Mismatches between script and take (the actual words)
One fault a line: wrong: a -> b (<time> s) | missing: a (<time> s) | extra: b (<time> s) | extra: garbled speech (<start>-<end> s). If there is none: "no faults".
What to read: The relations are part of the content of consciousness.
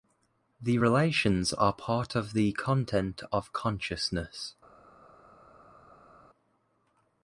no faults